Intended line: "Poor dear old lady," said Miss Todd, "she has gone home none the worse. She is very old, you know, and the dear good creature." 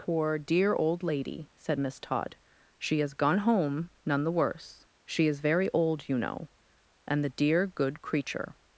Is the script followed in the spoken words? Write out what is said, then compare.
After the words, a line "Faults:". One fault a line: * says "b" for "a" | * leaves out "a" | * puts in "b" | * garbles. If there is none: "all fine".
"Poor dear old lady," said Miss Todd, "she has gone home none the worse. She is very old, you know, and the dear good creature."
Faults:
all fine